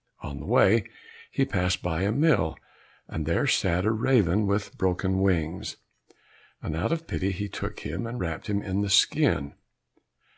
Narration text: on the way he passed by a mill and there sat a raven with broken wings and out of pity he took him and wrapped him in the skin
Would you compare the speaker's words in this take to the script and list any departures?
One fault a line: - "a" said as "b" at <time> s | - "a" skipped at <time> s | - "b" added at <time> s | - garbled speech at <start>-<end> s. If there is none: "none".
none